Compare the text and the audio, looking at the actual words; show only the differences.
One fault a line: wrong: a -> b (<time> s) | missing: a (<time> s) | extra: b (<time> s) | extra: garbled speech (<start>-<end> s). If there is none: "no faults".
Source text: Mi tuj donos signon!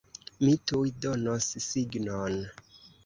no faults